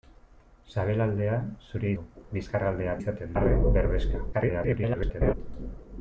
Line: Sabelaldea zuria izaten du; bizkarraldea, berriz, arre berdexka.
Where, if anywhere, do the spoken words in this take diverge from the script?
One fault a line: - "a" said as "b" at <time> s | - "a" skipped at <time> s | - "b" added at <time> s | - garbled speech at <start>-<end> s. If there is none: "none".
- "izaten" skipped at 1.9 s
- "berriz" said as "izaten" at 3.0 s
- garbled speech at 4.3-5.3 s